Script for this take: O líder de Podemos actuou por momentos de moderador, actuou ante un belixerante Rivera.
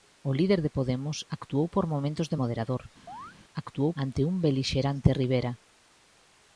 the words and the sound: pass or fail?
fail